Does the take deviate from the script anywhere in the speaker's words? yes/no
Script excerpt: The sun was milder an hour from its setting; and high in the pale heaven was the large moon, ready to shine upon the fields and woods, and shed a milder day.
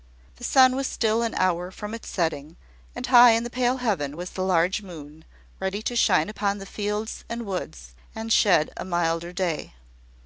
yes